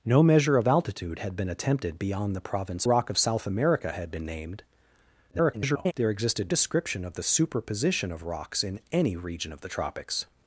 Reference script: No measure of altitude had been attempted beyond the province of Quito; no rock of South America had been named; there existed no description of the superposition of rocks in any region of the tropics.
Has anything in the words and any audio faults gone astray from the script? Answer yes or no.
yes